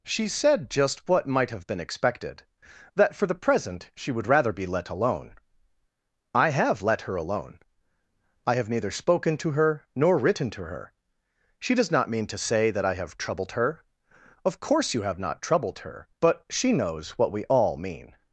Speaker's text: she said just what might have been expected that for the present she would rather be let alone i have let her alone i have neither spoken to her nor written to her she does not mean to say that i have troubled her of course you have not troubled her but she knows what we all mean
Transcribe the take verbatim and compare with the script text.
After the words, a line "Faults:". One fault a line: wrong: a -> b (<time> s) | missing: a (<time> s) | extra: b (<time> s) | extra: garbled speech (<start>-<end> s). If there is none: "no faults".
she said just what might have been expected that for the present she would rather be let alone i have let her alone i have neither spoken to her nor written to her she does not mean to say that i have troubled her of course you have not troubled her but she knows what we all mean
Faults:
no faults